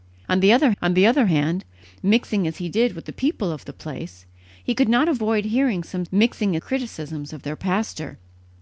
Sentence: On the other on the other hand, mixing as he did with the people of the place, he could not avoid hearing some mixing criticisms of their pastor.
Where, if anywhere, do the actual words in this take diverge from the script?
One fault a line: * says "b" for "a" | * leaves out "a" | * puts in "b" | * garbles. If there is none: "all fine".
all fine